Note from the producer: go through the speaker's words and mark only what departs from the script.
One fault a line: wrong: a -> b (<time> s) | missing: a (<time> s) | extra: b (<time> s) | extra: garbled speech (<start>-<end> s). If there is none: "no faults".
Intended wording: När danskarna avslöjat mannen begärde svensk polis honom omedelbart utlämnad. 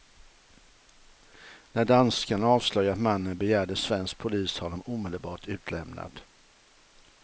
no faults